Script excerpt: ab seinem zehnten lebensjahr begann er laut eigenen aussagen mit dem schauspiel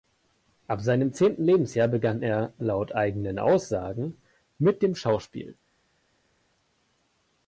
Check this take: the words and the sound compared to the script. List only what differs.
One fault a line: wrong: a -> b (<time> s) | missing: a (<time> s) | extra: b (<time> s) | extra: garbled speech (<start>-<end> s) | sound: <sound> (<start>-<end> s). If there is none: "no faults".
no faults